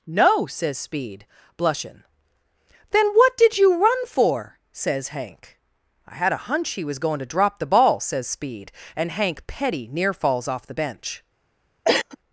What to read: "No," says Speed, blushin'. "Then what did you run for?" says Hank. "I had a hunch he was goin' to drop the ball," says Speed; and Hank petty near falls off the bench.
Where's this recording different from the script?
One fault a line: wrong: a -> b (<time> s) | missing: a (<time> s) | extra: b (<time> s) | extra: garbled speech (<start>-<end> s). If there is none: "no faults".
no faults